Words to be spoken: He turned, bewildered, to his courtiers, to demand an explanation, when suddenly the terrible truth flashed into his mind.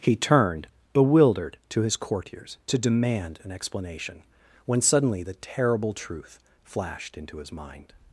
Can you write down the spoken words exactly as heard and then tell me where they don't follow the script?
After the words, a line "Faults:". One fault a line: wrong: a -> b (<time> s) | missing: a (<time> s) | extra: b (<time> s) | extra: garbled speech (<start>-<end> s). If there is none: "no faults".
He turned, bewildered, to his courtiers, to demand an explanation, when suddenly the terrible truth flashed into his mind.
Faults:
no faults